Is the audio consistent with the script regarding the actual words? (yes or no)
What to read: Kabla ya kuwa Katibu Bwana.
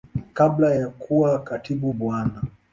yes